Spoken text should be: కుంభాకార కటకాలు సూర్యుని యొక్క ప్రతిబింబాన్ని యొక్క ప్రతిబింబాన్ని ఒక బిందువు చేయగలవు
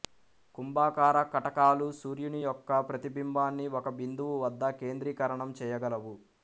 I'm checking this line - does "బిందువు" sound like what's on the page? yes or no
no